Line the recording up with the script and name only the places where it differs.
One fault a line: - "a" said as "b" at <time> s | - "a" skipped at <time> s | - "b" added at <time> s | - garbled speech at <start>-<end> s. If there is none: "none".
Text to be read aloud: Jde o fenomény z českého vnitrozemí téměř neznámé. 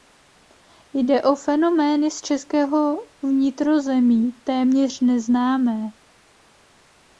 none